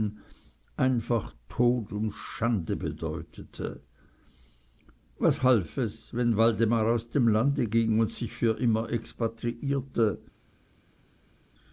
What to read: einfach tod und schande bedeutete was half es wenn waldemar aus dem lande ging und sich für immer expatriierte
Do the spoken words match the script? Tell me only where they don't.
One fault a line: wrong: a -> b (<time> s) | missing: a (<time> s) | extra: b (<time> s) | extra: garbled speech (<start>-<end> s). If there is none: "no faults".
no faults